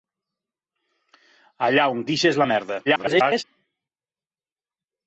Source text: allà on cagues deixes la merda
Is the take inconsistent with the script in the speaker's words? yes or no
yes